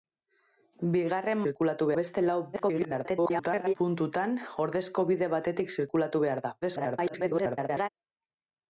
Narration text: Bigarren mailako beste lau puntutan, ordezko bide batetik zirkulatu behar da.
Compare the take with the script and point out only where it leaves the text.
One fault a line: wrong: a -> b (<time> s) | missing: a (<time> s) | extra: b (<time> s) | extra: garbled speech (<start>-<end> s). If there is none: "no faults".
wrong: mailako -> zirkulatu (1.4 s)
extra: garbled speech (2.5-3.7 s)
extra: garbled speech (6.6-7.9 s)